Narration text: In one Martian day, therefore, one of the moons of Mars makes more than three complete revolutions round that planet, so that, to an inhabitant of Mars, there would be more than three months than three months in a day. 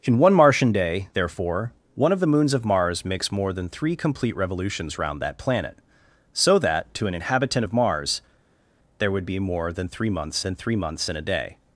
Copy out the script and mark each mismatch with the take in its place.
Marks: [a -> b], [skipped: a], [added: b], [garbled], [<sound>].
In one Martian day, therefore, one of the moons of Mars makes more than three complete revolutions round that planet, so that, to an inhabitant of Mars, there would be more than three months than three months in a day.